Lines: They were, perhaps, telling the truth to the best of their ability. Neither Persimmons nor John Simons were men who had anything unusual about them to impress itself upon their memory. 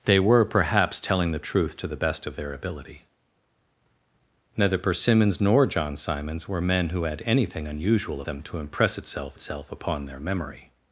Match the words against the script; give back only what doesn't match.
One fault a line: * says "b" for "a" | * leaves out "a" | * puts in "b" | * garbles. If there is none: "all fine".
* leaves out "about"
* puts in "itself"